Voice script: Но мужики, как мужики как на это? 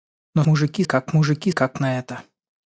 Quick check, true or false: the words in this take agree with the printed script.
true